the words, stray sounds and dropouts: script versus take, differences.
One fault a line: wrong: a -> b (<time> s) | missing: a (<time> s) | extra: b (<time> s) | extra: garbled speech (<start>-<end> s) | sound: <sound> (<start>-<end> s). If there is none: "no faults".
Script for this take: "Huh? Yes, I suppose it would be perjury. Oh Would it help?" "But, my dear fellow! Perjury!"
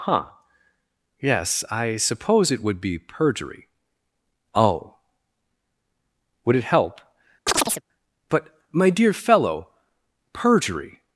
sound: chirp (7.5-7.8 s)